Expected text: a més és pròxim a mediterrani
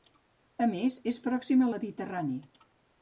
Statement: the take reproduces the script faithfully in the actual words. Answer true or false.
true